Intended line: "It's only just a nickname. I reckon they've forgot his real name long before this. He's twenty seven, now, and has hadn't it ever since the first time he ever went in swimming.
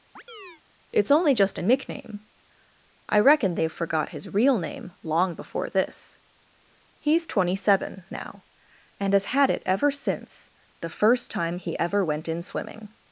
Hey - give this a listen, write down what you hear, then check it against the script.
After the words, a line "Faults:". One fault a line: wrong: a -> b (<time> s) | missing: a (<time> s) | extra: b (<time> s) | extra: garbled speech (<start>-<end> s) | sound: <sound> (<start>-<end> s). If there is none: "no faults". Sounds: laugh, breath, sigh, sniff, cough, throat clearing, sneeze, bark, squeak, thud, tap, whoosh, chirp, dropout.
"It's only just a nickname. I reckon they've forgot his real name long before this. He's twenty seven, now, and has had it ever since the first time he ever went in swimming.
Faults:
sound: chirp (0.2-0.6 s)
wrong: hadn't -> had (9.3 s)